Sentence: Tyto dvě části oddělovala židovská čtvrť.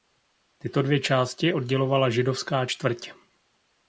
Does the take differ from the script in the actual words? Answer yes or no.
no